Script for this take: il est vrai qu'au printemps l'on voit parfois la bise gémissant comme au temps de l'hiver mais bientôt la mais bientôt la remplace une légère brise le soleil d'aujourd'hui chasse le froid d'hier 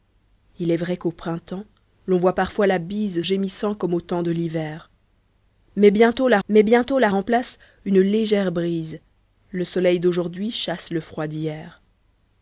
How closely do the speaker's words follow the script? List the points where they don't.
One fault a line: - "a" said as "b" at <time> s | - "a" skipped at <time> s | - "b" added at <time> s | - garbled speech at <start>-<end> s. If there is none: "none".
none